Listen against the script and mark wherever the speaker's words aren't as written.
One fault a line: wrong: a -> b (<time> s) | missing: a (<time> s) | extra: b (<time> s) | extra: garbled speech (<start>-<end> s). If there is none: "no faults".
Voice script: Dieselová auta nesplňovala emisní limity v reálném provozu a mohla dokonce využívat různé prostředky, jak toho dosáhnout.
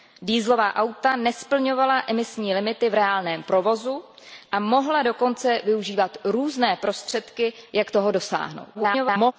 extra: garbled speech (8.7-9.3 s)